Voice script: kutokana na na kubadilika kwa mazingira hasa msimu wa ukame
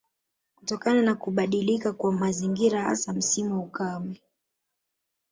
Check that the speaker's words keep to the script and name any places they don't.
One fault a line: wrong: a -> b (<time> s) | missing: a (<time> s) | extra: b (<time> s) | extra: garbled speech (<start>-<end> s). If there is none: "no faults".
missing: na (1.1 s)